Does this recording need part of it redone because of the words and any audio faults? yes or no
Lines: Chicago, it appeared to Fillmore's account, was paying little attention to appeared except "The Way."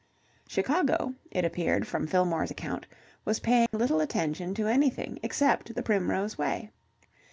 yes